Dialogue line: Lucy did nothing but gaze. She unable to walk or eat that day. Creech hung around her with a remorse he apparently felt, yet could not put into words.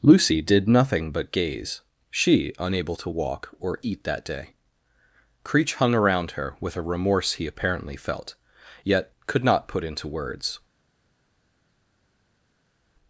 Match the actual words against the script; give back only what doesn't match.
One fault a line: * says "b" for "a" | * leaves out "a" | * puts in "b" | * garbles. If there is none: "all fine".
all fine